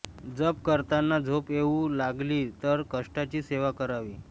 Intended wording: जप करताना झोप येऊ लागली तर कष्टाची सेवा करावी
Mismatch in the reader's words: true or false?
false